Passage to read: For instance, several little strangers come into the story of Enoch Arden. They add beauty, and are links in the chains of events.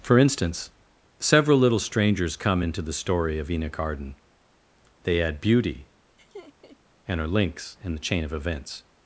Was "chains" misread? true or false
true